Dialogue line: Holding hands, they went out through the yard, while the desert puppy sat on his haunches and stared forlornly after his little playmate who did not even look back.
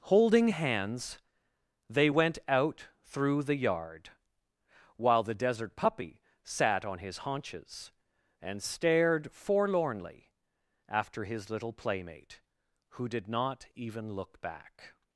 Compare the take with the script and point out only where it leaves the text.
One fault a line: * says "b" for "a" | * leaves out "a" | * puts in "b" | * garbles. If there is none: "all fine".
all fine